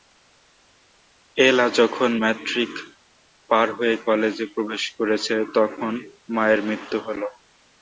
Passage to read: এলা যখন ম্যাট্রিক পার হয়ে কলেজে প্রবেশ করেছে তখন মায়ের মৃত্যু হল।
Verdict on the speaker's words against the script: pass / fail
pass